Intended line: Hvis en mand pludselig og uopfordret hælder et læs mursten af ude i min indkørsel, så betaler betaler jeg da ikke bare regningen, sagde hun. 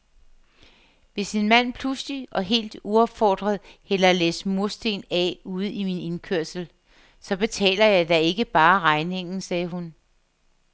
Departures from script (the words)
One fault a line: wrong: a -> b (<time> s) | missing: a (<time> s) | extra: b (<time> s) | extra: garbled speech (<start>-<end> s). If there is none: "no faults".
extra: helt (2.4 s)
missing: betaler (7.8 s)